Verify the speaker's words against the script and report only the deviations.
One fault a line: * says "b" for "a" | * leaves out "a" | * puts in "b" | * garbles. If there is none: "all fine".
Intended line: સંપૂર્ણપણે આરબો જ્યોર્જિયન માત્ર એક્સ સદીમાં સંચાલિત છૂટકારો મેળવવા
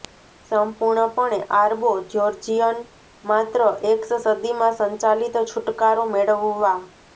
all fine